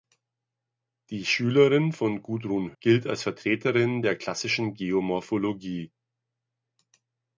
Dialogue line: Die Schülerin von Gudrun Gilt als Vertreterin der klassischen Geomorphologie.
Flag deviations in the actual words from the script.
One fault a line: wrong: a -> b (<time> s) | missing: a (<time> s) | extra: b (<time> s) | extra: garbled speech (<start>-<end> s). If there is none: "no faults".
no faults